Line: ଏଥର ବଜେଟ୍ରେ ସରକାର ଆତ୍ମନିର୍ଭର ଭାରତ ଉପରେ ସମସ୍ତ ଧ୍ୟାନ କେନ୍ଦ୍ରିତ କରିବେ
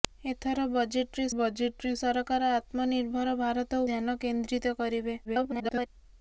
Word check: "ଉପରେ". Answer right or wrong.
wrong